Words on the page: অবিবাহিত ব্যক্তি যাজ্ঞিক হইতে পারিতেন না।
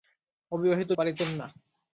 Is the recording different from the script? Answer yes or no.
yes